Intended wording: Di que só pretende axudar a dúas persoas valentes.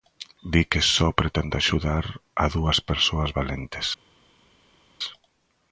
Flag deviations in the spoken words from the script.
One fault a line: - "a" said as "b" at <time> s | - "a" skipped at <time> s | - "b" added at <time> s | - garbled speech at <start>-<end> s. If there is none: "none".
none